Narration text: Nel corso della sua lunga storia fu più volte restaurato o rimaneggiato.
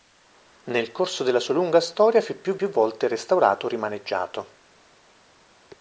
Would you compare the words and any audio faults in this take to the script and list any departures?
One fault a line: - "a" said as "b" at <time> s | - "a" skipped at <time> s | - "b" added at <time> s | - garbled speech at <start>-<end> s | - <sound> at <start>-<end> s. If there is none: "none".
- "più" added at 2.6 s